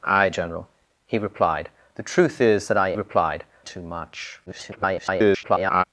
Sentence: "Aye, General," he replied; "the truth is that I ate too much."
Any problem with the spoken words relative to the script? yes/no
yes